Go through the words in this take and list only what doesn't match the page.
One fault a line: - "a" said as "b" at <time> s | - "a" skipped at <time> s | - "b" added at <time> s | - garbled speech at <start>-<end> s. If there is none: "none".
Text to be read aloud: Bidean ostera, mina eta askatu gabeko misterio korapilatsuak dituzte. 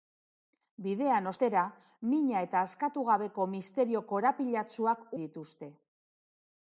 none